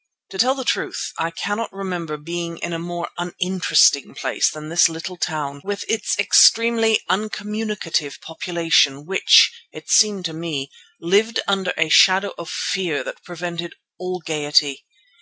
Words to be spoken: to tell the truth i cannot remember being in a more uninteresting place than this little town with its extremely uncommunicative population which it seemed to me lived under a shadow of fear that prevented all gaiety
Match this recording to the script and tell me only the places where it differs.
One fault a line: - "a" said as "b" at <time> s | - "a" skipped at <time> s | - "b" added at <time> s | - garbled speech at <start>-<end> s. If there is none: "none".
none